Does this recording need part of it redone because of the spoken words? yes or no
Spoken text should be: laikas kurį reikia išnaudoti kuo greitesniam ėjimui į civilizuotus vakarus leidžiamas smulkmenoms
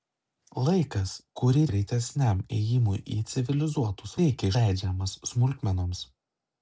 yes